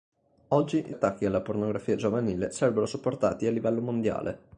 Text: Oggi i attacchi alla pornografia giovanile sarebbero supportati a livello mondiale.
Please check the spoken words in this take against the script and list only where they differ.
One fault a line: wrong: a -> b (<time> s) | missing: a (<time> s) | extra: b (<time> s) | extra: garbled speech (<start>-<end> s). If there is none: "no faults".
no faults